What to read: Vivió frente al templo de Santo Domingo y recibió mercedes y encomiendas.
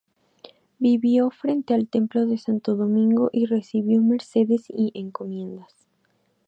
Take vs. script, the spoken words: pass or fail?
pass